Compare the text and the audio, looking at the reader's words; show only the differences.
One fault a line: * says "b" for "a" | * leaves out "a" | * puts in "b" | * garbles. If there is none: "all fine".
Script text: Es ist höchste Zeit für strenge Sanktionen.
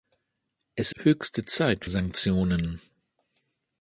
* leaves out "ist"
* leaves out "für strenge"